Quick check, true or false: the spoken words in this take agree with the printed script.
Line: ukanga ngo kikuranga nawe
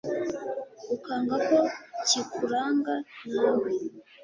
false